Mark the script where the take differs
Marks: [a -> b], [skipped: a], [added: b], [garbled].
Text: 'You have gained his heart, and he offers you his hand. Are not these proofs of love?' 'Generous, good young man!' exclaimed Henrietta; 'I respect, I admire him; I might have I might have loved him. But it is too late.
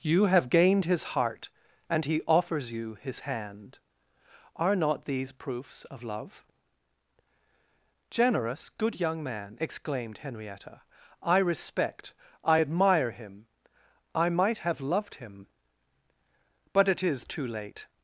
'You have gained his heart, and he offers you his hand. Are not these proofs of love?' 'Generous, good young man!' exclaimed Henrietta; 'I respect, I admire him; I might have [skipped: I might have] loved him. But it is too late.